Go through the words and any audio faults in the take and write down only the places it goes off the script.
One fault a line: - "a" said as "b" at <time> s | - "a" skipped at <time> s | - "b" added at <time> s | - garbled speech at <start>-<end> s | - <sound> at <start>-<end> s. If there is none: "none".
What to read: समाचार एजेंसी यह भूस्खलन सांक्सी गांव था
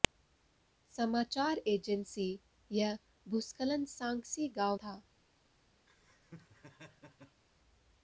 - laugh at 5.9-7.4 s